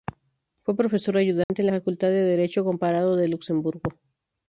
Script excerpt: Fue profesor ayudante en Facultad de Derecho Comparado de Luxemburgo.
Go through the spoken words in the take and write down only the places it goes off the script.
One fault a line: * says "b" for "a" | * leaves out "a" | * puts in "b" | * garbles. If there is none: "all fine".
all fine